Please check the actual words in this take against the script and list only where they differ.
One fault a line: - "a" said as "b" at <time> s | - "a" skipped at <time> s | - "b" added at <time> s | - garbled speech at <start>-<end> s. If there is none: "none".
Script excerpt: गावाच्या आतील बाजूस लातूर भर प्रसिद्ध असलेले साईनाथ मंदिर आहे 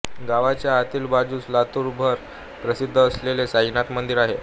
none